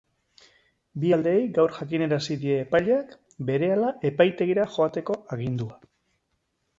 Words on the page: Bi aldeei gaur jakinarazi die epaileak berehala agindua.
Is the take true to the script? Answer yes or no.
no